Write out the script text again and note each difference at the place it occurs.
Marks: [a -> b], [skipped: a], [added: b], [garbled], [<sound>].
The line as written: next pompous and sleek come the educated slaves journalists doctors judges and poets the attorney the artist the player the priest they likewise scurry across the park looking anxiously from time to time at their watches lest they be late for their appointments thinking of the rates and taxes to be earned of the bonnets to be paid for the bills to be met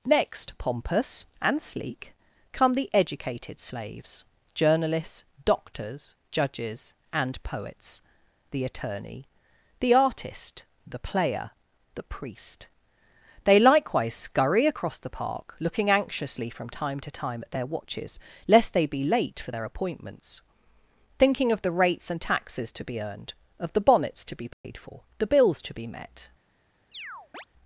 next pompous and sleek come the educated slaves journalists doctors judges and poets the attorney the artist the player the priest they likewise scurry across the park looking anxiously from time to time at their watches lest they be late for their appointments thinking of the rates and taxes to be earned of the bonnets to be paid [dropout] for the bills to be met [chirp]